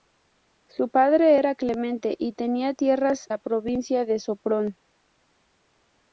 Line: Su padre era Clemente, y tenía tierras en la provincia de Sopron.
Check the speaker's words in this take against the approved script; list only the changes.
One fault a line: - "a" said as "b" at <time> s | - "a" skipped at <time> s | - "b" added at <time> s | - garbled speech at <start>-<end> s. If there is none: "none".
- "en" skipped at 3.3 s